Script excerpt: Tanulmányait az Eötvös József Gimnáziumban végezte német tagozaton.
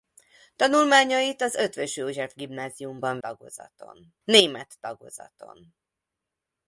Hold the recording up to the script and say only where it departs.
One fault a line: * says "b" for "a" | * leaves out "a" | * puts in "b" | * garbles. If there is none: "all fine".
* says "tagozaton" for "végezte"